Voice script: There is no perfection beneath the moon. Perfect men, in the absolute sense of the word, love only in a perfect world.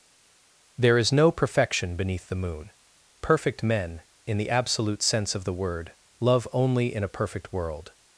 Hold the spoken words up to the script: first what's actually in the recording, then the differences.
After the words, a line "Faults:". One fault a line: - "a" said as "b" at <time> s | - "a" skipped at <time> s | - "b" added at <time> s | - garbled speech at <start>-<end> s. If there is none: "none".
There is no perfection beneath the moon. Perfect men, in the absolute sense of the word, love only in a perfect world.
Faults:
none